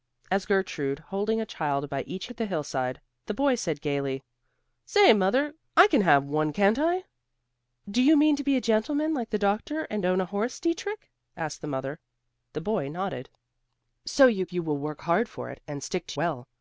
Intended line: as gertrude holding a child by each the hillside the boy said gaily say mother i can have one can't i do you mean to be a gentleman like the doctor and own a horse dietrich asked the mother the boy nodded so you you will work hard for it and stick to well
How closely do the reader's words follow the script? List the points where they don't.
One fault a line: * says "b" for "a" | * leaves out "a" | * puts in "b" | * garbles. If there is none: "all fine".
all fine